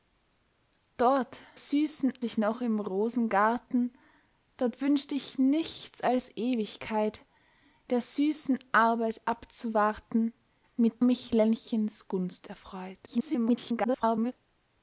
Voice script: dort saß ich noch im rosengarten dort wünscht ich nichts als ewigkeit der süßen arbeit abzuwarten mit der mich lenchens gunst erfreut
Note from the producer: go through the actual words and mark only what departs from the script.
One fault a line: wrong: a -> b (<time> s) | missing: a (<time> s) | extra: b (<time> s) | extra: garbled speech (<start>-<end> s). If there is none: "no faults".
wrong: saß -> süßen (1.6 s)
missing: der (11.0 s)
extra: garbled speech (13.1-14.3 s)